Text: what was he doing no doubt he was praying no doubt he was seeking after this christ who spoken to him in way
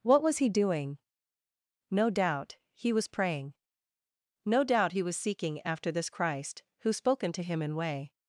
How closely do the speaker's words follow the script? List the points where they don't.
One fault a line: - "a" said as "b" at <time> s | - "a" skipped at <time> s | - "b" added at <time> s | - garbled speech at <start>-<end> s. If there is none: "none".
none